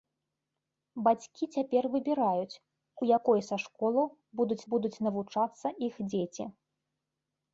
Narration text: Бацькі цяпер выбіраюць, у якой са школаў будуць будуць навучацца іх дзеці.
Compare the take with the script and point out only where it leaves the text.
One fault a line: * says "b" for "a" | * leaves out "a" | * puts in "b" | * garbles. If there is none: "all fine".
all fine